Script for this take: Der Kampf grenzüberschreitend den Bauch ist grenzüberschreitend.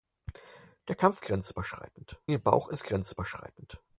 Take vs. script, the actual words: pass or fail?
pass